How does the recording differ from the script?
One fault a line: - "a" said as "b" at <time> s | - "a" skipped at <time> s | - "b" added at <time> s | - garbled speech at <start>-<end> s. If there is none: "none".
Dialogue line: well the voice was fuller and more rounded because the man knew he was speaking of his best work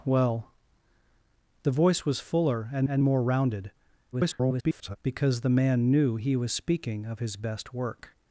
- "and" added at 2.9 s
- garbled speech at 4.1-5.0 s